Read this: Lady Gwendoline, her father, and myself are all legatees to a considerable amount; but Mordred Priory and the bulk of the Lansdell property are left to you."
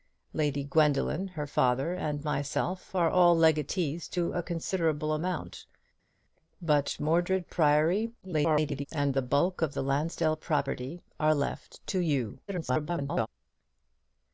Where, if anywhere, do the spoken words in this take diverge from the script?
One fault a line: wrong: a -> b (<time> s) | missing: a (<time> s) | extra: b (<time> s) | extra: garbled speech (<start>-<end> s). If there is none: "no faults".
extra: garbled speech (8.2-8.9 s)
extra: garbled speech (12.5-13.3 s)